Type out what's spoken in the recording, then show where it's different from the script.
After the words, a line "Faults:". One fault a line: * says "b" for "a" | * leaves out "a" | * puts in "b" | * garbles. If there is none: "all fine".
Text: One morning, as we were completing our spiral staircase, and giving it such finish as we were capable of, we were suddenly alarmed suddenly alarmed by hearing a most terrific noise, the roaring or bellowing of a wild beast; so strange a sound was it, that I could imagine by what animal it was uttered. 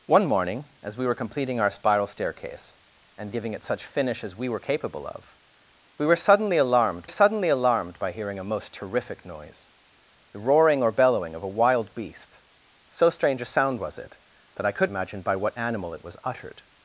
One morning, as we were completing our spiral staircase, and giving it such finish as we were capable of, we were suddenly alarmed suddenly alarmed by hearing a most terrific noise, the roaring or bellowing of a wild beast; so strange a sound was it, that I could imagine by what animal it was uttered.
Faults:
all fine